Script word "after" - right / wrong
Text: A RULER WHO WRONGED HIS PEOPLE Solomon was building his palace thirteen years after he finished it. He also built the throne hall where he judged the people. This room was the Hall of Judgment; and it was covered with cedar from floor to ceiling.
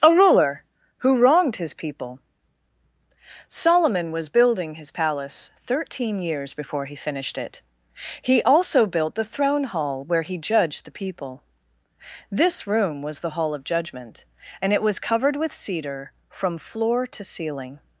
wrong